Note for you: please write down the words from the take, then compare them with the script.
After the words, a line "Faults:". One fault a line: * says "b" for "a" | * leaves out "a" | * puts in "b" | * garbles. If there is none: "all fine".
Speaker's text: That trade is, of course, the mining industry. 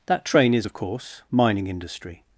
That train is, of course, mining industry.
Faults:
* says "train" for "trade"
* leaves out "the"